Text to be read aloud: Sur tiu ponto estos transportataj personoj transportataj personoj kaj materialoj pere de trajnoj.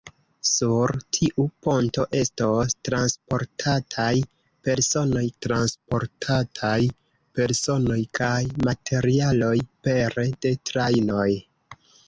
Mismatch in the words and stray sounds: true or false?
false